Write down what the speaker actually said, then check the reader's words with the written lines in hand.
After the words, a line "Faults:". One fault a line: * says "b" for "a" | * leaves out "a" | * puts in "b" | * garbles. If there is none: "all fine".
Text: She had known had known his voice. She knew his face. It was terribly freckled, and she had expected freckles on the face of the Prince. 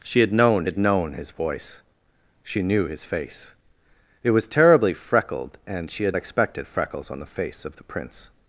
She had known had known his voice. She knew his face. It was terribly freckled, and she had expected freckles on the face of the Prince.
Faults:
all fine